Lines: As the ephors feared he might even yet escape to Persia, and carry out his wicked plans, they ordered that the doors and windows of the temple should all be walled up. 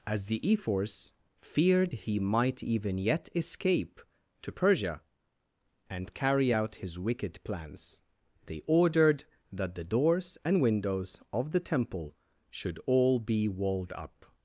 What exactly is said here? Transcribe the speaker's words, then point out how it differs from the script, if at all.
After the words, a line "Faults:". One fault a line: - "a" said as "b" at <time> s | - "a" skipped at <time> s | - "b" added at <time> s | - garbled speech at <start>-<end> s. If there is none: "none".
As the ephors feared he might even yet escape to Persia, and carry out his wicked plans, they ordered that the doors and windows of the temple should all be walled up.
Faults:
none